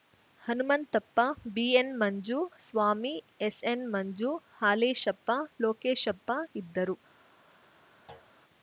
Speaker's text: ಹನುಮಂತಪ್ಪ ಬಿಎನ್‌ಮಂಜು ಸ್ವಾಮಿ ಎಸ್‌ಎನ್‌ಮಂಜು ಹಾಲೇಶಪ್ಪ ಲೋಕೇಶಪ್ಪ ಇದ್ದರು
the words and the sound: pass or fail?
fail